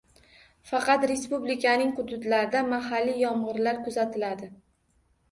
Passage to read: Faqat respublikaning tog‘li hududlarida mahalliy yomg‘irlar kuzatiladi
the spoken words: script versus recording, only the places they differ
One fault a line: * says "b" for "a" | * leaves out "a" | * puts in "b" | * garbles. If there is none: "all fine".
* leaves out "tog‘li"